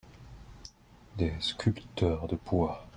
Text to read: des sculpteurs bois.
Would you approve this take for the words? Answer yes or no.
no